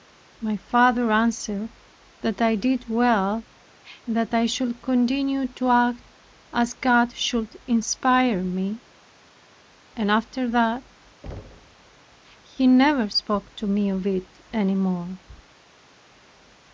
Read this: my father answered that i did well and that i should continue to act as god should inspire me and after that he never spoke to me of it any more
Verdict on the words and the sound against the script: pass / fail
fail